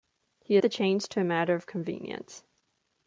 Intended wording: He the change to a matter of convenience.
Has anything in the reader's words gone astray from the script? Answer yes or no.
no